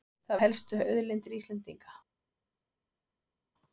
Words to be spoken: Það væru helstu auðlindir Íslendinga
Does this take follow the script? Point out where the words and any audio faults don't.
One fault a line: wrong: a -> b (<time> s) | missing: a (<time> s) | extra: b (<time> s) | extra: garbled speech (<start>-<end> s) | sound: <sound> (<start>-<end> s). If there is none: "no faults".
missing: væru (0.4 s)